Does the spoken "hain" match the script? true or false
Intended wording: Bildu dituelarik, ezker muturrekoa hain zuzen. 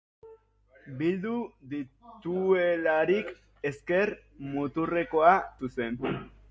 false